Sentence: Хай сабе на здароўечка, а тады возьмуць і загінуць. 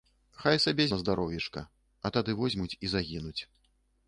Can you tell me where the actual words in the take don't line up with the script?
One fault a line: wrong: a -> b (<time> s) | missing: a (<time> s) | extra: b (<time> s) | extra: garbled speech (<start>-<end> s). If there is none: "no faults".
no faults